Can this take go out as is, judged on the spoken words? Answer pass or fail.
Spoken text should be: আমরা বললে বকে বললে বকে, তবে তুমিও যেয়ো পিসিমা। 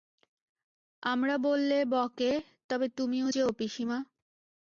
fail